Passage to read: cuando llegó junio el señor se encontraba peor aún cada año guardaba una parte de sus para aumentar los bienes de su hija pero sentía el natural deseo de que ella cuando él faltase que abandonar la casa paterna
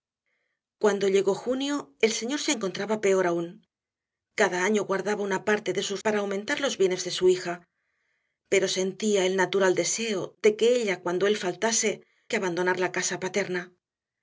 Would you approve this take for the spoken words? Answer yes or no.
yes